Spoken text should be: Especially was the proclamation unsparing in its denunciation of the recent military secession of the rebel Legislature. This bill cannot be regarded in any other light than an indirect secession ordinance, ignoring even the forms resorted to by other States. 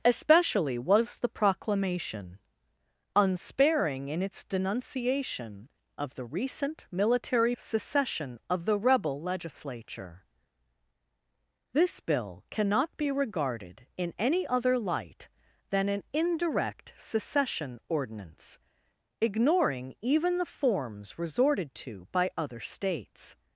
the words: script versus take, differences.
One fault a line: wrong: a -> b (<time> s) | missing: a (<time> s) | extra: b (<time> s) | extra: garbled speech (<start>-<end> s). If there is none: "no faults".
no faults